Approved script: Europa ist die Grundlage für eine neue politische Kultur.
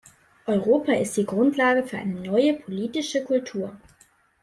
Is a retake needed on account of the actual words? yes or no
no